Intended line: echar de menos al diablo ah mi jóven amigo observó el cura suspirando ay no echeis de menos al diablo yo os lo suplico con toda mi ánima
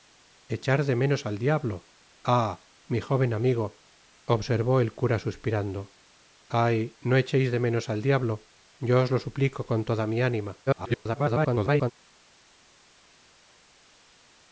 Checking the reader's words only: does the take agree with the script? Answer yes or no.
no